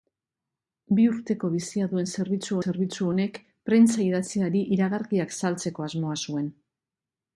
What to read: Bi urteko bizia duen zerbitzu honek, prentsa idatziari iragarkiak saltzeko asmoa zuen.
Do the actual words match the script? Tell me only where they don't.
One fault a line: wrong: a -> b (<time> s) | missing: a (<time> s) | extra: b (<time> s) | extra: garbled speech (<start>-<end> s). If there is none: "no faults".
extra: zerbitzu (2.6 s)